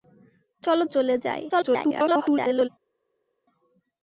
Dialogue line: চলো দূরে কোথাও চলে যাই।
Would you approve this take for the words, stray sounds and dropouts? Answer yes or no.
no